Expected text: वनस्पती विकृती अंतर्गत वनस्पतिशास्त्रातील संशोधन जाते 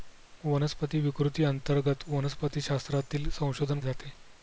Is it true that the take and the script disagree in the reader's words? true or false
false